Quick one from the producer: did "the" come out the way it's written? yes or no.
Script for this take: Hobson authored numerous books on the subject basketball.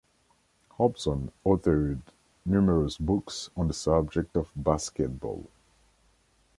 yes